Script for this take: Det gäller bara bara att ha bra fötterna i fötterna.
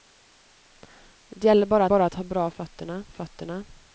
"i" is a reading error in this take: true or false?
false